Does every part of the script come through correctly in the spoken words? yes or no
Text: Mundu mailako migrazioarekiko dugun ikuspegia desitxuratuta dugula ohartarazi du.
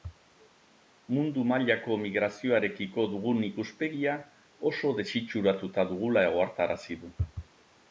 no